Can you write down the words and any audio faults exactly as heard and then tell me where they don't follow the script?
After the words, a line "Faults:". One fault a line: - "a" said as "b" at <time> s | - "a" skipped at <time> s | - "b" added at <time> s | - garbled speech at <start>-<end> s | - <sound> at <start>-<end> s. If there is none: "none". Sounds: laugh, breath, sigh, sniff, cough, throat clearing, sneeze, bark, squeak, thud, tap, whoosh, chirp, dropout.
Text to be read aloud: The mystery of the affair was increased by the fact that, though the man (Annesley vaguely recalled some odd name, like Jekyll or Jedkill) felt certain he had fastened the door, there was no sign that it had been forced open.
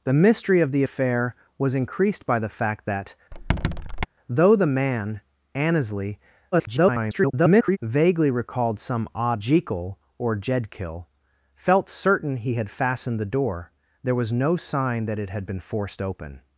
The mystery of the affair was increased by the fact that, though the man (Annesley [garbled] vaguely recalled some odd Jekyll or Jedkill) felt certain he had fastened the door, there was no sign that it had been forced open.
Faults:
- squeak at 3.3-4.1 s
- garbled speech at 6.5-7.8 s
- "name like" skipped at 9.4 s